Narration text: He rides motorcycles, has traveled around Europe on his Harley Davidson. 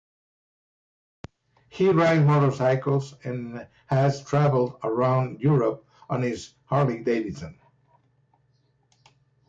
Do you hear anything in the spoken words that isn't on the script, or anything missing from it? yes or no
yes